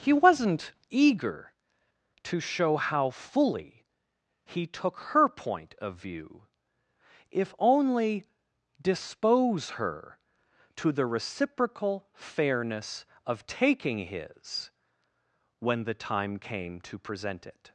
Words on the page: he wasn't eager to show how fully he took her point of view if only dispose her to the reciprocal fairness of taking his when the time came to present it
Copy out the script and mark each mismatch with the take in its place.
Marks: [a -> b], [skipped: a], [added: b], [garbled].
he wasn't eager to show how fully he took her point of view if only dispose her to the reciprocal fairness of taking his when the time came to present it